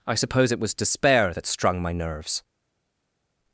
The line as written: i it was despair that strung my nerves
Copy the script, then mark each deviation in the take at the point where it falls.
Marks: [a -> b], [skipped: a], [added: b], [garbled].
i [added: suppose] it was despair that strung my nerves